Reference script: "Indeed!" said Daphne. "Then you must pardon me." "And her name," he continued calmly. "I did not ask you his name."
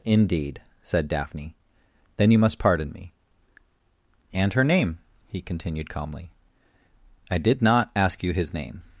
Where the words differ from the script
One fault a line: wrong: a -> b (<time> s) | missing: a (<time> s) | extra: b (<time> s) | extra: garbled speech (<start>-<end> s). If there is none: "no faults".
no faults